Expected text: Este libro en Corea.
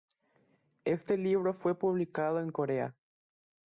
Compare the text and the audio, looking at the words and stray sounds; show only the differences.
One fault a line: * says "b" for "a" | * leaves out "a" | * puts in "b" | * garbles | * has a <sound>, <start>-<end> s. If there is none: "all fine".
* puts in "fue publicado"